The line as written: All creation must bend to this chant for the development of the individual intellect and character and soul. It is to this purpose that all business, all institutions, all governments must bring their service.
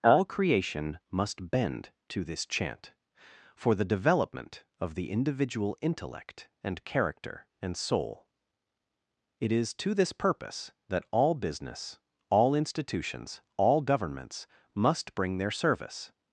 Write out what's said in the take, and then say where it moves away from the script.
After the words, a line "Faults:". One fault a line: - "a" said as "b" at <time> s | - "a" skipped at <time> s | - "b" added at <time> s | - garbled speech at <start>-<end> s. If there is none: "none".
All creation must bend to this chant for the development of the individual intellect and character and soul. It is to this purpose that all business, all institutions, all governments must bring their service.
Faults:
none